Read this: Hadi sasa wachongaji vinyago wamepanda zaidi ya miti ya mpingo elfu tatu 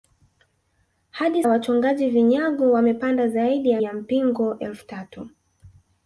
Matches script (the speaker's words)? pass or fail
fail